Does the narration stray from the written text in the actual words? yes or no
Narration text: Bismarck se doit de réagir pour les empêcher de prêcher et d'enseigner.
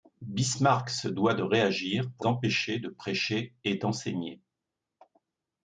yes